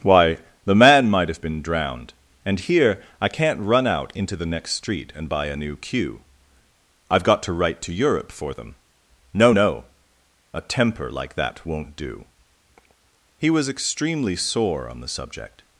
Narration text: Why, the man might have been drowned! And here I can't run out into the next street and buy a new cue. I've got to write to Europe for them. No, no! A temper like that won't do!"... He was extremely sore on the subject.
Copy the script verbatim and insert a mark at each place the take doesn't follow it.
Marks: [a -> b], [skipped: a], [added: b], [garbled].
Why, the man might have been drowned! And here I can't run out into the next street and buy a new cue. I've got to write to Europe for them. No, no! A temper like that won't do!"... He was extremely sore on the subject.